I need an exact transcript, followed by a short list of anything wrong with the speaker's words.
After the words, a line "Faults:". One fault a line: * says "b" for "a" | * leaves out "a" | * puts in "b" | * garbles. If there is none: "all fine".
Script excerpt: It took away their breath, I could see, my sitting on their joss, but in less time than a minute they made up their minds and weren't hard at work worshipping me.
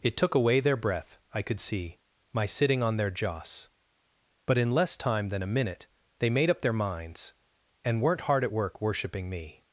It took away their breath, I could see, my sitting on their joss, but in less time than a minute they made up their minds and weren't hard at work worshipping me.
Faults:
all fine